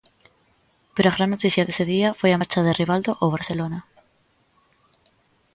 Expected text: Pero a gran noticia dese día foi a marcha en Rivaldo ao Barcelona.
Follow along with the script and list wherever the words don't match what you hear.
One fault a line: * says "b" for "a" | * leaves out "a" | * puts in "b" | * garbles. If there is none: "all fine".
* says "de" for "en"